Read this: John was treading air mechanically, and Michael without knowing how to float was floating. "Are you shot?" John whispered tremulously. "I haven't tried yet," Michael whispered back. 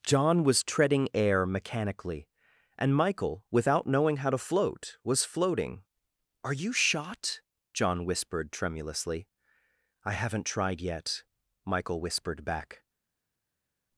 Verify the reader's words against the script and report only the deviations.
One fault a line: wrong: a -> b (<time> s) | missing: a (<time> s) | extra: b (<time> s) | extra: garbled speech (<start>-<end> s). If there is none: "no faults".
no faults